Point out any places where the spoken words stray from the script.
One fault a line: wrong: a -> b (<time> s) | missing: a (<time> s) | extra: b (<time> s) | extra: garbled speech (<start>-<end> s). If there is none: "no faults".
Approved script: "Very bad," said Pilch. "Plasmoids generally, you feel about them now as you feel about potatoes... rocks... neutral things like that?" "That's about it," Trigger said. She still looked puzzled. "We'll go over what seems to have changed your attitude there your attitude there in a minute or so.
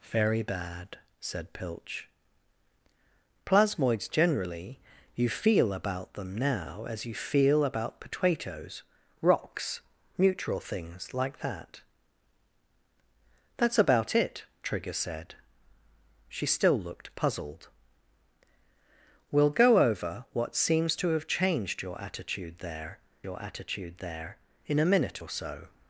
no faults